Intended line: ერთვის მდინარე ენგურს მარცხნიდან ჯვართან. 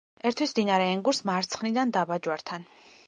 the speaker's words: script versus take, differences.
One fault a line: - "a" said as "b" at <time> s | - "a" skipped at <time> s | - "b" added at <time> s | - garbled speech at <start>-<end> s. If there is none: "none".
- "დაბა" added at 2.0 s